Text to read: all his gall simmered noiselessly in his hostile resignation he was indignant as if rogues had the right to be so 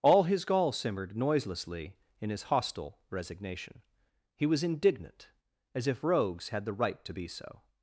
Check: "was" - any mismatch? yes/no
no